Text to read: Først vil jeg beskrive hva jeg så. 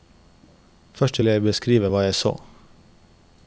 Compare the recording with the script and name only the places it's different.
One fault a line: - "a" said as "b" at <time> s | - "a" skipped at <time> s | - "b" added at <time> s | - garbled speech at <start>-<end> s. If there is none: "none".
- "vil" skipped at 1.2 s